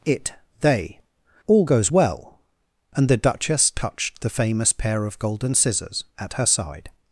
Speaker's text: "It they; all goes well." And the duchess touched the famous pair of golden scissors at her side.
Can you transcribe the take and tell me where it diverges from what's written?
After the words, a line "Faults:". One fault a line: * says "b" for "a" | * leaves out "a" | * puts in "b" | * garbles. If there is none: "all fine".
"It they; all goes well." And the duchess touched the famous pair of golden scissors at her side.
Faults:
all fine